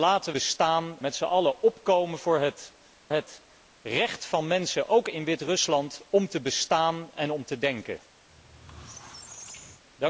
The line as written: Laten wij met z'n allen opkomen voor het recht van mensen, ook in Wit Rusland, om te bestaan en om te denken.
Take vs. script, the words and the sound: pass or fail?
fail